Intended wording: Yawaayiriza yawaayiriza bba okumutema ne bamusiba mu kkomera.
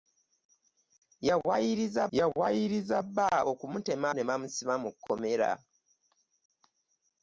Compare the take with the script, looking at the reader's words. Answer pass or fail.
pass